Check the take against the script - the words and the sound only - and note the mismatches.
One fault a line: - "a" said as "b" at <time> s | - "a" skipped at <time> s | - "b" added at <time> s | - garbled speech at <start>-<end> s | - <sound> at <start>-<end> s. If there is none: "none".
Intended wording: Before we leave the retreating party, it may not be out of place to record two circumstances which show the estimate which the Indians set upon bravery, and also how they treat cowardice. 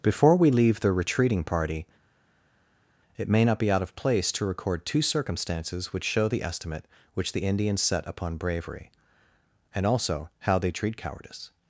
none